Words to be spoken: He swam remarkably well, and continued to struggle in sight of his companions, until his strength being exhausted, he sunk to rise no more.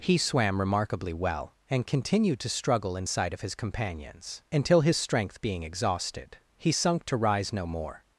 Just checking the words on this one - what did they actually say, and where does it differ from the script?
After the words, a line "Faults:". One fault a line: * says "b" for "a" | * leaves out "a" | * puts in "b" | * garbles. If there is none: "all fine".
He swam remarkably well, and continued to struggle in sight of his companions, until his strength being exhausted, he sunk to rise no more.
Faults:
all fine